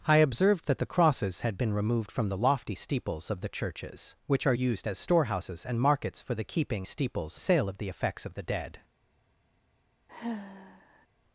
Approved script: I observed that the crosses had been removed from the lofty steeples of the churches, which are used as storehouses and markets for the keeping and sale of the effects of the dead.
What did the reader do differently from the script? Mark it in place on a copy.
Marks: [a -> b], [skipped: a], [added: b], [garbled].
I observed that the crosses had been removed from the lofty steeples of the churches, which are used as storehouses and markets for the keeping [and -> steeples] sale of the effects of the dead.